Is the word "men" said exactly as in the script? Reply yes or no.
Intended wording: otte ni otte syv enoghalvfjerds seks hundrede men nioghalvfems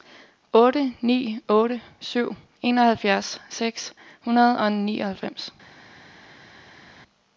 no